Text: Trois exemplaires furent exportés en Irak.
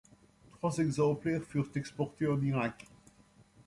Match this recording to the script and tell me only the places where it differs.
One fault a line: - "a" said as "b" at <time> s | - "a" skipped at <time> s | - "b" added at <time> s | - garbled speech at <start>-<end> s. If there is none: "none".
none